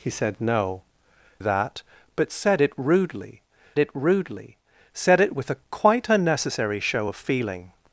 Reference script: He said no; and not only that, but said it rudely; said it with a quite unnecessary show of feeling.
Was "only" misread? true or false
true